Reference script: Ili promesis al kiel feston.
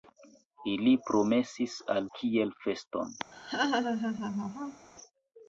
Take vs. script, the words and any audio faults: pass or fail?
fail